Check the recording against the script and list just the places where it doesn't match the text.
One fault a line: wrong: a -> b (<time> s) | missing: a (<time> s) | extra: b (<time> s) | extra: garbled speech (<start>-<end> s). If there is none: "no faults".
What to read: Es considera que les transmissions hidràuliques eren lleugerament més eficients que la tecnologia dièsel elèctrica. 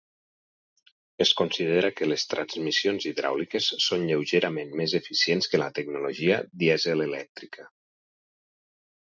wrong: eren -> són (3.9 s)